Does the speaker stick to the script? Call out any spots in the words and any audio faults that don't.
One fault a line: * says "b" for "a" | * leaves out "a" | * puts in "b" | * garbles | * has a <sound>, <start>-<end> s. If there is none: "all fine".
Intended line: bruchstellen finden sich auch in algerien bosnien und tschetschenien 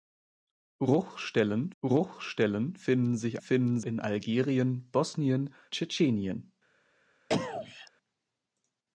* puts in "bruchstellen"
* says "finden" for "auch"
* leaves out "und"
* has a cough, 7.3-7.9 s